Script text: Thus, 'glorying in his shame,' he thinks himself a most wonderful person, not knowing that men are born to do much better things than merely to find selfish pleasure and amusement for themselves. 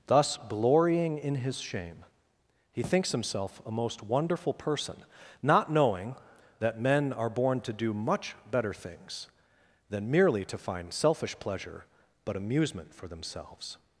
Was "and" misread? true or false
true